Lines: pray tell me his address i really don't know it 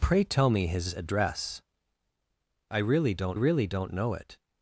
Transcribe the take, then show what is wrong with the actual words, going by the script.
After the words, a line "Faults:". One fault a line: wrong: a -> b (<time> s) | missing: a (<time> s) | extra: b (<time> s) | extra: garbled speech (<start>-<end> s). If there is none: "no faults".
pray tell me his address i really don't really don't know it
Faults:
extra: really don't (3.3 s)